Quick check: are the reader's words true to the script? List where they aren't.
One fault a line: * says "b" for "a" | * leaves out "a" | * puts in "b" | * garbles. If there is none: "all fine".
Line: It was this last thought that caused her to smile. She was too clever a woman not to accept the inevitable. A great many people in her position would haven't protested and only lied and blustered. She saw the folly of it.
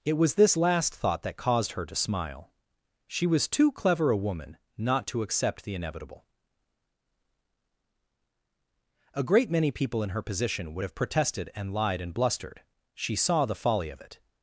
* says "have" for "haven't"
* leaves out "only"